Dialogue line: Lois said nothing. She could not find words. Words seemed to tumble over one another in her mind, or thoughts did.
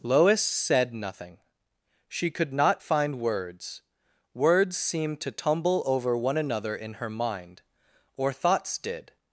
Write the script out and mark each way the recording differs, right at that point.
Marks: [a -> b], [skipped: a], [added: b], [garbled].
Lois said nothing. She could not find words. Words seemed to tumble over one another in her mind, or thoughts did.